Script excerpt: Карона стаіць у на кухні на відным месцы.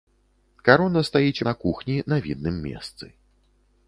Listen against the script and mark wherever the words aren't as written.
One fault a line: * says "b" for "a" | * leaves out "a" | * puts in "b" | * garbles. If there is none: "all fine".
all fine